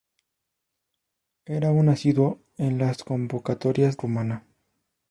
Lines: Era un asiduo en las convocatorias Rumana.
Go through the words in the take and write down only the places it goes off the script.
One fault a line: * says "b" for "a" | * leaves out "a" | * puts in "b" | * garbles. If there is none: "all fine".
all fine